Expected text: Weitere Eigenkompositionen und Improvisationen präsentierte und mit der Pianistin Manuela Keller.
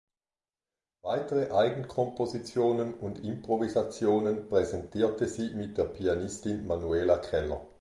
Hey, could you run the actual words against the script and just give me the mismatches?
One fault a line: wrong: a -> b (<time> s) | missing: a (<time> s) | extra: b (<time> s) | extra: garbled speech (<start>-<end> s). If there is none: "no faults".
wrong: und -> sie (5.3 s)